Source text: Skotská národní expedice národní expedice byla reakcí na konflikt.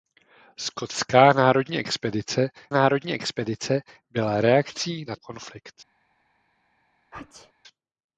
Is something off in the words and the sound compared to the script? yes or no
yes